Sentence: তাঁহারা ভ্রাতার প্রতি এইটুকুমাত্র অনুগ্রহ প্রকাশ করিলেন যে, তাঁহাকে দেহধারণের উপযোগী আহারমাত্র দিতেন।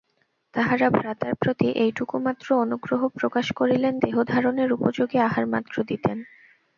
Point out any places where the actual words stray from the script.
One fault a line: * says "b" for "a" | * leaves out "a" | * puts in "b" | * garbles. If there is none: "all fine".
* leaves out "যে তাঁহাকে"